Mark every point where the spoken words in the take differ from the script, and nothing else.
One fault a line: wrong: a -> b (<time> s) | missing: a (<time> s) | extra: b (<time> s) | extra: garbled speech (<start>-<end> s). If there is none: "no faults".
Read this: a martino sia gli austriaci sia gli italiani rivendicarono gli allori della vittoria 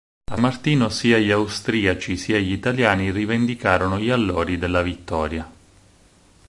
no faults